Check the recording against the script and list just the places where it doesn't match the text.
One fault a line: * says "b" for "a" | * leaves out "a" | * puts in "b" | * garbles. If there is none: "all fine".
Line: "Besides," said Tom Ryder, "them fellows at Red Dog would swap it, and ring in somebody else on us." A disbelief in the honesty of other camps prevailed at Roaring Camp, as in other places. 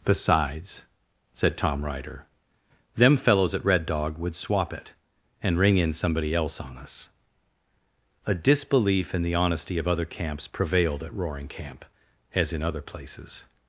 all fine